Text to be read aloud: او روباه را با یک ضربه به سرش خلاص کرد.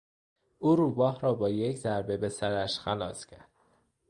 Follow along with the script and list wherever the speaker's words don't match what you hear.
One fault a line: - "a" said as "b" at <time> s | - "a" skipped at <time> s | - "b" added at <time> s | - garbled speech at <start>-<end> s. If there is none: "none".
none